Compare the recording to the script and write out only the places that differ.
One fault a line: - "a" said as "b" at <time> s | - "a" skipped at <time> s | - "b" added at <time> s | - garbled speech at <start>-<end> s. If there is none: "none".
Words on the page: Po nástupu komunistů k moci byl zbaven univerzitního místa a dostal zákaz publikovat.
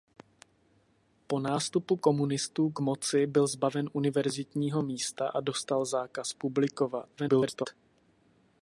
- garbled speech at 7.2-7.7 s